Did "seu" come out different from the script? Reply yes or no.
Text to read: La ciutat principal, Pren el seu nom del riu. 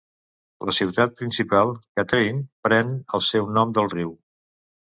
no